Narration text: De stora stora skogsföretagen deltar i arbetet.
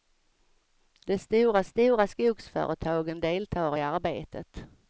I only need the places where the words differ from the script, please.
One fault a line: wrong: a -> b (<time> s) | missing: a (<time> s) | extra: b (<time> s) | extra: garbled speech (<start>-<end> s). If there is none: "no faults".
no faults